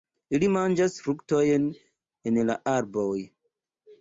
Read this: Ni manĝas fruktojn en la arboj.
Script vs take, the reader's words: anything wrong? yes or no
yes